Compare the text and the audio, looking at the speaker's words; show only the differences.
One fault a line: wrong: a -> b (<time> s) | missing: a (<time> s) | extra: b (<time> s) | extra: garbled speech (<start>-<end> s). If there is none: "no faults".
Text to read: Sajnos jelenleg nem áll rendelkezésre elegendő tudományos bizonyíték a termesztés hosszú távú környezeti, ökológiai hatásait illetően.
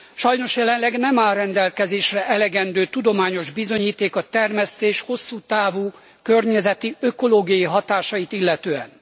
no faults